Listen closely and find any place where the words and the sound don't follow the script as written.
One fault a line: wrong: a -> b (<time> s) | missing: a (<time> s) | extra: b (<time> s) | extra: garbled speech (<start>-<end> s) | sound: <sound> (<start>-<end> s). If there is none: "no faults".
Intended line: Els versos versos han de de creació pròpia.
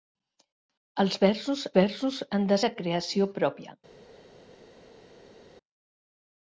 no faults